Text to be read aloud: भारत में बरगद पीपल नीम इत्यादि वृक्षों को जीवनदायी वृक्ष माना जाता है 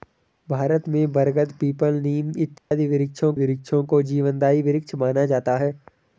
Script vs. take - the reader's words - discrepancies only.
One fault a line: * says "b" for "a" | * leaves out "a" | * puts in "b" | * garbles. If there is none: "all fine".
* puts in "वृक्षों"